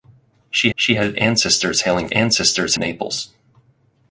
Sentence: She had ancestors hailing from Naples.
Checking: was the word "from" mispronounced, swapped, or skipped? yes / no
yes